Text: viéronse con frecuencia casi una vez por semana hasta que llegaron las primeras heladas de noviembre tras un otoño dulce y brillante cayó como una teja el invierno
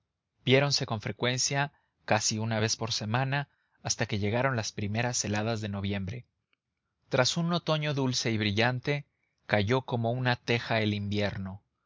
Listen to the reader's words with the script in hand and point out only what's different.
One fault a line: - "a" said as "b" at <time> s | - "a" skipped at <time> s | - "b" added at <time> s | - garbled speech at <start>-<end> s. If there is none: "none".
none